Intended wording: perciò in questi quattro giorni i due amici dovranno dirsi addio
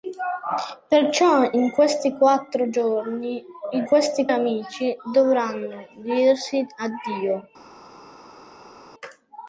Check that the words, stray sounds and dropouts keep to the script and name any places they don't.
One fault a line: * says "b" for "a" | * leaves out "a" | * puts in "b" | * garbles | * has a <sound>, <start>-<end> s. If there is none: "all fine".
* says "questi" for "due"